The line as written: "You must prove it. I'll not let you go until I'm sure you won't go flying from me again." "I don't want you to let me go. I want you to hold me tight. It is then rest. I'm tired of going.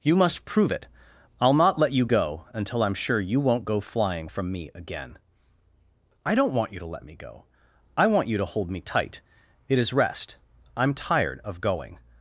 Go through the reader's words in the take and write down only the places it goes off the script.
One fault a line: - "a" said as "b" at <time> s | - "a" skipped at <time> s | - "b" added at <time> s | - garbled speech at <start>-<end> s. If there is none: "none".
- "then" skipped at 9.9 s